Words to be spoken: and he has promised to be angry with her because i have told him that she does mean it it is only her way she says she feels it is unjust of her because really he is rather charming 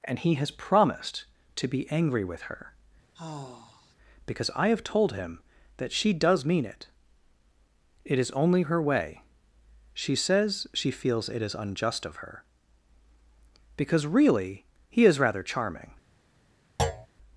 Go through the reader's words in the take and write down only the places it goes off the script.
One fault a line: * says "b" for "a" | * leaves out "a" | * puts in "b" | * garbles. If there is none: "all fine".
all fine